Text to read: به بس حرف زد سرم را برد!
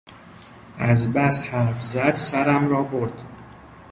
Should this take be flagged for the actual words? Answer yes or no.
yes